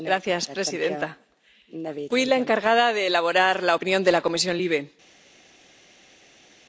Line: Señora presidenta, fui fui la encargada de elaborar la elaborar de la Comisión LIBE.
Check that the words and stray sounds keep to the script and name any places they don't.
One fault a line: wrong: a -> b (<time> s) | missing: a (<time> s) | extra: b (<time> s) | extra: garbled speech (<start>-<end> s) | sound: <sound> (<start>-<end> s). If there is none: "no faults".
missing: fui (2.2 s)
wrong: elaborar -> opinión (3.7 s)